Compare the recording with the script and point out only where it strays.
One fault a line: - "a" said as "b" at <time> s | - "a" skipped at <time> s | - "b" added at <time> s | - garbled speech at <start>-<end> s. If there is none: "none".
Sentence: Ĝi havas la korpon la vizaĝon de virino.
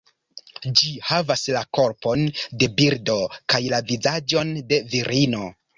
- "de birdo kaj" added at 2.6 s